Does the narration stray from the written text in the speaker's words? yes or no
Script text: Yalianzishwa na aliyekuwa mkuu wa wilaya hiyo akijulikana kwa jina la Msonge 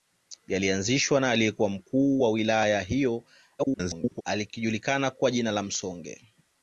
yes